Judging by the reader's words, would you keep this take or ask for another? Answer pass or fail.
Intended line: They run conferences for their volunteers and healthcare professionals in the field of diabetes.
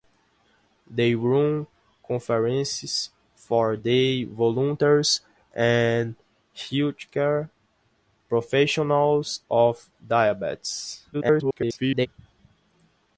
fail